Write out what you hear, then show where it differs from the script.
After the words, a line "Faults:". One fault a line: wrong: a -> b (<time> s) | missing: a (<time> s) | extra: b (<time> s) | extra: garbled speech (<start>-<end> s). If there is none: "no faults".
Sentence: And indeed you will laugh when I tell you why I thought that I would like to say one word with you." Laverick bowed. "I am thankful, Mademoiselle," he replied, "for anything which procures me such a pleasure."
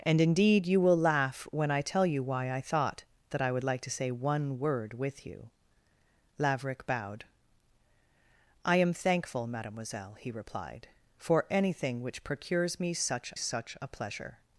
And indeed you will laugh when I tell you why I thought that I would like to say one word with you." Laverick bowed. "I am thankful, Mademoiselle," he replied, "for anything which procures me such such a pleasure."
Faults:
extra: such (13.3 s)